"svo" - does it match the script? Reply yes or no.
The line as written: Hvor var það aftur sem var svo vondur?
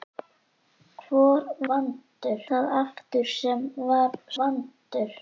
no